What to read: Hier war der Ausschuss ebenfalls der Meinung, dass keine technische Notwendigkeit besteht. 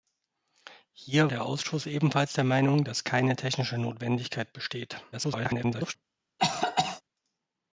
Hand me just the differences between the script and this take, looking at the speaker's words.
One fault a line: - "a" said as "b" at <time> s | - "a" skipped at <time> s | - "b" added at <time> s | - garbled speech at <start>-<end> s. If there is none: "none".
- "war" skipped at 1.3 s
- garbled speech at 5.1-5.9 s